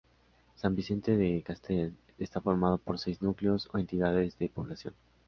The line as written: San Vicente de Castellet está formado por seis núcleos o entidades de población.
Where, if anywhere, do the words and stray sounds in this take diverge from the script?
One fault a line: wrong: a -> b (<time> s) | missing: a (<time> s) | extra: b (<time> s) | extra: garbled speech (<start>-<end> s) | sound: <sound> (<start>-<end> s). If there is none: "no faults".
no faults